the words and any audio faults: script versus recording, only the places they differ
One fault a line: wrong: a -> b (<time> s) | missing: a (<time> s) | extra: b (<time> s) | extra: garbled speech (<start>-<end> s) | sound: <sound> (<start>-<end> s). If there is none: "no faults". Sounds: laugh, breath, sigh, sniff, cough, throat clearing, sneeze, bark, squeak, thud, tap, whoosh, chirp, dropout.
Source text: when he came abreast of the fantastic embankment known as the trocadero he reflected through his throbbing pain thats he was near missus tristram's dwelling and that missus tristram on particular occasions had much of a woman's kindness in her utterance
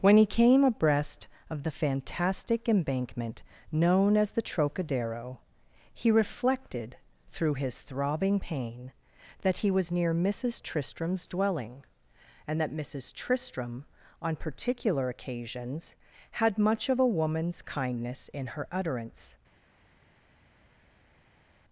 wrong: thats -> that (9.4 s)